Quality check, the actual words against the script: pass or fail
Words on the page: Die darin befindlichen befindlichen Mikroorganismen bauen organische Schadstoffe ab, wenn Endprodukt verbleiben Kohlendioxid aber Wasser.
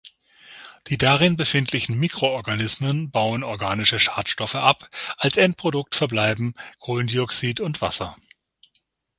fail